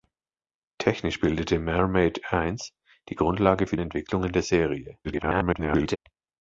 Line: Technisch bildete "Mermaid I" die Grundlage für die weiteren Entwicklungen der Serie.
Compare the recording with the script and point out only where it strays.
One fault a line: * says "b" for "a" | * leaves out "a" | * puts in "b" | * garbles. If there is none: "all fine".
* leaves out "die weiteren"
* garbles